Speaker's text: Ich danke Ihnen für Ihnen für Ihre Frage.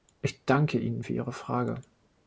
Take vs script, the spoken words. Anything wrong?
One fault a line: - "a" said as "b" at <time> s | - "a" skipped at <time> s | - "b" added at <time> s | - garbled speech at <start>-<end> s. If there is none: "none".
- "Ihnen für" skipped at 1.1 s